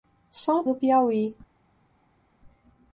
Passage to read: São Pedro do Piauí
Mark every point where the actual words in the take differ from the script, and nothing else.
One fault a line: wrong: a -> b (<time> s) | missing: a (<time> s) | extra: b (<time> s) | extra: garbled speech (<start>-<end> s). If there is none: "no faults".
missing: Pedro (0.7 s)